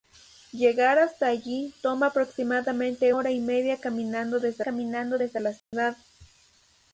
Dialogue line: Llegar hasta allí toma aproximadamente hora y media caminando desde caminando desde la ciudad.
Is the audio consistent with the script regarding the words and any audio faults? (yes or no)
no